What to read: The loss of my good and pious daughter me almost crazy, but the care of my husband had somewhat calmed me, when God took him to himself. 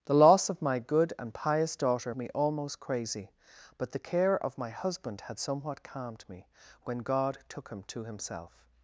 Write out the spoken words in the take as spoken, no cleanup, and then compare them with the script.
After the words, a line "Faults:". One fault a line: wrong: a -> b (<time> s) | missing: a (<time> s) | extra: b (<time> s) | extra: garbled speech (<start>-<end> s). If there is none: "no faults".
The loss of my good and pious daughter me almost crazy, but the care of my husband had somewhat calmed me, when God took him to himself.
Faults:
no faults